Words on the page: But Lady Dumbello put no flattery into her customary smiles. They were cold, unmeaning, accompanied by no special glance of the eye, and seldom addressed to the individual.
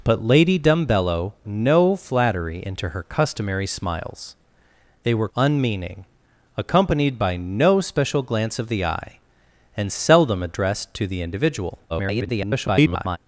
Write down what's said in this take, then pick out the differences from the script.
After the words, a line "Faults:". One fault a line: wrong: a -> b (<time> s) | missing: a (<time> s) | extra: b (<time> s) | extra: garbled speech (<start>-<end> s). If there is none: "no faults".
But Lady Dumbello no flattery into her customary smiles. They were unmeaning, accompanied by no special glance of the eye, and seldom addressed to the individual. [garbled]
Faults:
missing: put (1.3 s)
missing: cold (5.3 s)
extra: garbled speech (11.9-13.2 s)